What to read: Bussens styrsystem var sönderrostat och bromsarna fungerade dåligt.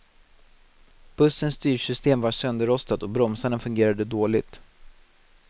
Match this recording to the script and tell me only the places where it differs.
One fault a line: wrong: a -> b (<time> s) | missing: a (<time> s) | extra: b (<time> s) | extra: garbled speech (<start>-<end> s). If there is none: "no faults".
no faults